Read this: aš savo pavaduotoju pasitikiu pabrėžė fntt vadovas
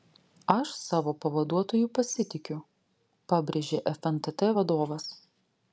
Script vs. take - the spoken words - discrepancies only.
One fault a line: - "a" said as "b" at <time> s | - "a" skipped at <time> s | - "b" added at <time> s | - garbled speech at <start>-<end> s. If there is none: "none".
none